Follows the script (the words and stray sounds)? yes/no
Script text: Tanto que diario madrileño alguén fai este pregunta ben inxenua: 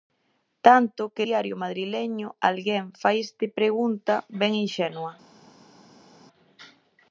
yes